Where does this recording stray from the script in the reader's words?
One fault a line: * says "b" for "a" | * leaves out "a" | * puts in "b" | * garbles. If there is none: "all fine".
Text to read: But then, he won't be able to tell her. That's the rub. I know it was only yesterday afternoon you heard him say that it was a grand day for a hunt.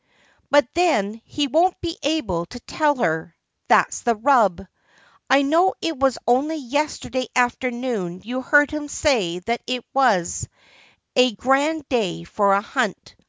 all fine